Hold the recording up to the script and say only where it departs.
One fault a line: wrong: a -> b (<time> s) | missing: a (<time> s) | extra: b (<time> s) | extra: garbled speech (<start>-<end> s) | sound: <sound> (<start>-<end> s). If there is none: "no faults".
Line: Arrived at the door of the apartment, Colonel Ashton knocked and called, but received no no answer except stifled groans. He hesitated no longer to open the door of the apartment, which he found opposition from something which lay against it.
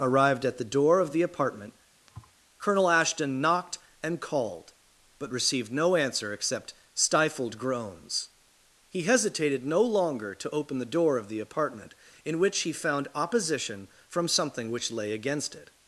sound: thud (2.1-2.4 s)
missing: no (5.9 s)
extra: in (12.2 s)